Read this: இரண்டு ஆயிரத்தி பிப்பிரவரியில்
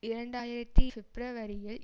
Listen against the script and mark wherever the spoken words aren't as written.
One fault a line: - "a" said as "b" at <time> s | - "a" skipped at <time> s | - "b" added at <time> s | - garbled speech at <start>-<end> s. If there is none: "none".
none